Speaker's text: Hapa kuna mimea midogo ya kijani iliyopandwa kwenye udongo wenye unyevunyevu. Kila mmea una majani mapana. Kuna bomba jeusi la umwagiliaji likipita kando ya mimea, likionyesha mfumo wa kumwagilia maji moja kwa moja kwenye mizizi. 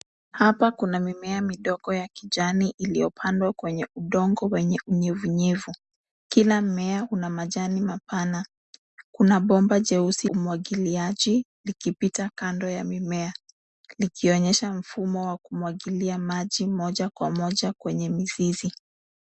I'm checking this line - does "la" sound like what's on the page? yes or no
no